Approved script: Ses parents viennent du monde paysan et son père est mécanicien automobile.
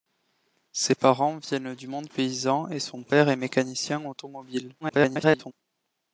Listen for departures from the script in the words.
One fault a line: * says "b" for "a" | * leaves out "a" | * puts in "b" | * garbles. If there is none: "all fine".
* garbles